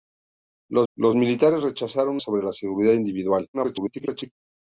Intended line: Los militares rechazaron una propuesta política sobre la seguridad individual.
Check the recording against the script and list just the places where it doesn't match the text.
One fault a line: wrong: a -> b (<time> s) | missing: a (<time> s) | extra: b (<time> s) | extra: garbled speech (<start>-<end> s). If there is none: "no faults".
extra: los (0.9 s)
missing: una propuesta política (2.2 s)
extra: garbled speech (3.5-4.3 s)